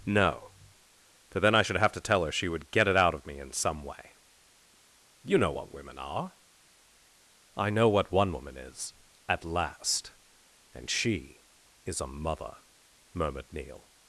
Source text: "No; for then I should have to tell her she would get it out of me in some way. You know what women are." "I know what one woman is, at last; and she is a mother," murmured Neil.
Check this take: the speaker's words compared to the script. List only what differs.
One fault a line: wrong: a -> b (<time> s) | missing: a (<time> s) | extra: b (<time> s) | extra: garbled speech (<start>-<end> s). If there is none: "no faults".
no faults